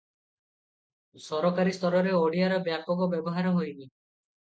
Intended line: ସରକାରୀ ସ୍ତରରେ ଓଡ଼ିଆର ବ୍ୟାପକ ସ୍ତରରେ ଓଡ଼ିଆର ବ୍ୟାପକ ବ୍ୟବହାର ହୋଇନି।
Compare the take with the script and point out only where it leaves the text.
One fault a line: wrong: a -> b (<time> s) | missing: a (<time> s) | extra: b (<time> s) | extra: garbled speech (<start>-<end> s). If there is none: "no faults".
missing: ସ୍ତରରେ ଓଡ଼ିଆର ବ୍ୟାପକ (3.1 s)